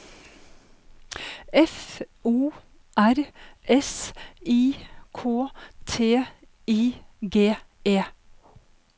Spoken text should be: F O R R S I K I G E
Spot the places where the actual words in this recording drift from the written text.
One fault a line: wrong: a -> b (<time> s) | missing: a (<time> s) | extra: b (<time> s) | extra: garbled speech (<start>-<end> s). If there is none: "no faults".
missing: R (3.1 s)
extra: T (5.8 s)